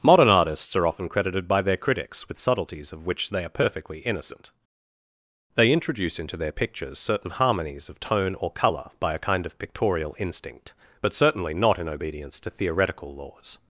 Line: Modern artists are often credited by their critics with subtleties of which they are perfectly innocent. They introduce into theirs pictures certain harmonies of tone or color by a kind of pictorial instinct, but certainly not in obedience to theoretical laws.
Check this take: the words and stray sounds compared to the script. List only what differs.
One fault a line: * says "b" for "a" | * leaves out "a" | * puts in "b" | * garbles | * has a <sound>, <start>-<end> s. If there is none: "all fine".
* says "their" for "theirs"